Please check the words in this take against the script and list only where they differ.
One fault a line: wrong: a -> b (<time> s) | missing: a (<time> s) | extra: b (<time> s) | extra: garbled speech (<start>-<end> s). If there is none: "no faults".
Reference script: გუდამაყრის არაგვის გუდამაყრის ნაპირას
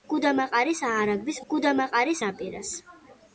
no faults